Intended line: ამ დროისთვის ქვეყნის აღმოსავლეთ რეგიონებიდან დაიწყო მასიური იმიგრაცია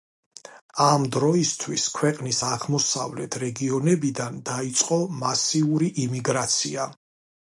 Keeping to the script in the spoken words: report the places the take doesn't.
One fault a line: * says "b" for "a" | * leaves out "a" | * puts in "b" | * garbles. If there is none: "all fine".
all fine